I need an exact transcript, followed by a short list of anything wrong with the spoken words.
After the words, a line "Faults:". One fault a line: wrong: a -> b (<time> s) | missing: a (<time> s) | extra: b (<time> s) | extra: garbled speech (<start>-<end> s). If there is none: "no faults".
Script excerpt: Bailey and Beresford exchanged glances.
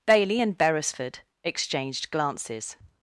Bailey and Beresford exchanged glances.
Faults:
no faults